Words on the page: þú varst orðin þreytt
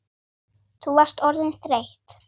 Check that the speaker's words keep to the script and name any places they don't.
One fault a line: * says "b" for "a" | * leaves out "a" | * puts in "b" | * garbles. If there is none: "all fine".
all fine